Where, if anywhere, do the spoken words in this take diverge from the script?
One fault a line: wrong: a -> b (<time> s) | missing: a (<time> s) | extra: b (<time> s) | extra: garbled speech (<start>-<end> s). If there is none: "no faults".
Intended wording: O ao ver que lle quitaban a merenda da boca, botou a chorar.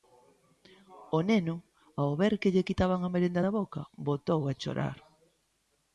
extra: neno (1.3 s)